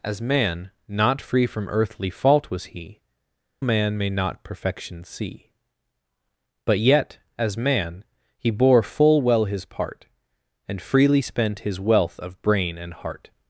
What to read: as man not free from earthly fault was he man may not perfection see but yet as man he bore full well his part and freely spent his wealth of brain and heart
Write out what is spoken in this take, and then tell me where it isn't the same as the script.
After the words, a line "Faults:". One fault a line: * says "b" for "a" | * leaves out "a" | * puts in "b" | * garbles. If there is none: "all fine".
as man not free from earthly fault was he man may not perfection see but yet as man he bore full well his part and freely spent his wealth of brain and heart
Faults:
all fine